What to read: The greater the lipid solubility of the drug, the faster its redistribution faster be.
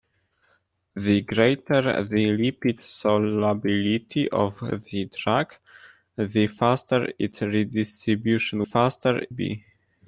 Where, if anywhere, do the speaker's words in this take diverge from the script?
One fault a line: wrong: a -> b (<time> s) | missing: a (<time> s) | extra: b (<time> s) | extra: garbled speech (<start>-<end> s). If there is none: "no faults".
no faults